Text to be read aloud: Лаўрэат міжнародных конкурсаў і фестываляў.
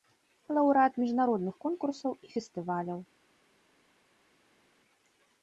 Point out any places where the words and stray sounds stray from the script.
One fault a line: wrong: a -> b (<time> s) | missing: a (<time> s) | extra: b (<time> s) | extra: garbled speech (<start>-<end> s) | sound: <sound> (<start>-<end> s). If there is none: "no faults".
no faults